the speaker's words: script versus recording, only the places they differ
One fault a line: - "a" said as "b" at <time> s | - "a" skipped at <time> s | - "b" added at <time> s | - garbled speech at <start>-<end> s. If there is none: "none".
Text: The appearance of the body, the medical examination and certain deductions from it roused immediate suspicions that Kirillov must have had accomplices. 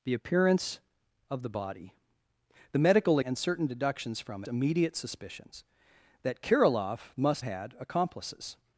- "examination" skipped at 3.2 s
- "it roused" skipped at 4.4 s
- "have" skipped at 7.4 s